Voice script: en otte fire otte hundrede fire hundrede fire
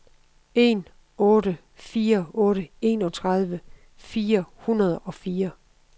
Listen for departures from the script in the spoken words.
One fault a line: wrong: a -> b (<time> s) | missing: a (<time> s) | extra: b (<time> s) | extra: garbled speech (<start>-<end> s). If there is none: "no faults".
wrong: hundrede -> enogtredive (2.8 s)
extra: og (5.0 s)